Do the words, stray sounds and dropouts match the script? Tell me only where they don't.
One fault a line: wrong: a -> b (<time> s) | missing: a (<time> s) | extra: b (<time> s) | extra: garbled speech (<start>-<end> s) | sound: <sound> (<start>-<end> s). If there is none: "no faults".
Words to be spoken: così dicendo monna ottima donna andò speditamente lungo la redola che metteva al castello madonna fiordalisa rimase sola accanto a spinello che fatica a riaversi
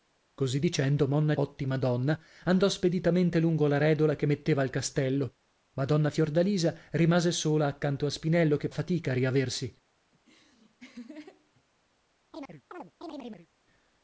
sound: laugh (10.1-11.6 s)
sound: chirp (12.3-13.5 s)